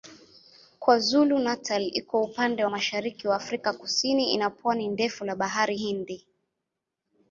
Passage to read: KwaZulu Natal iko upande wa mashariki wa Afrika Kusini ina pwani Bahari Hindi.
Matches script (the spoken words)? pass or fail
fail